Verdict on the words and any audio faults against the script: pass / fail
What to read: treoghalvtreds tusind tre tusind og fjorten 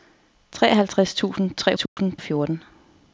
fail